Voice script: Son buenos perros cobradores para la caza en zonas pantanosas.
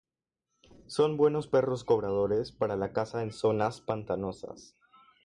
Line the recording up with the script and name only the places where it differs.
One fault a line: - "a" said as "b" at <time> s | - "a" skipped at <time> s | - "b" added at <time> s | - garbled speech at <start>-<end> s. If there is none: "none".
none